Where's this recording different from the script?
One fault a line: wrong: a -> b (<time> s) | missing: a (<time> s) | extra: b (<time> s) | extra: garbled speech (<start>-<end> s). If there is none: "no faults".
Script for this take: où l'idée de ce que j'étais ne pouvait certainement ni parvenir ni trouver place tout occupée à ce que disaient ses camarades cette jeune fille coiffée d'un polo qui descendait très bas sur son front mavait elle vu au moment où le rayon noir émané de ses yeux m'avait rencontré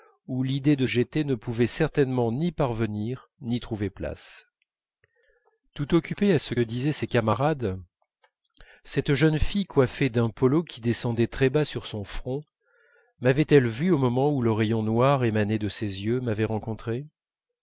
missing: ce que (0.9 s)
missing: que (6.5 s)